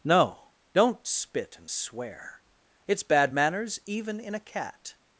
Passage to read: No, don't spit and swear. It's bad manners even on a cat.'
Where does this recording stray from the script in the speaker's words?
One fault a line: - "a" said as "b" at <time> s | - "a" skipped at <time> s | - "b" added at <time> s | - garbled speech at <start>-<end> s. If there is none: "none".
- "on" said as "in" at 4.2 s